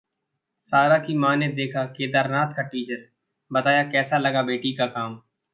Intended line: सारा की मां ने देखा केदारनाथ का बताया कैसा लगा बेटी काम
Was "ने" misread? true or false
false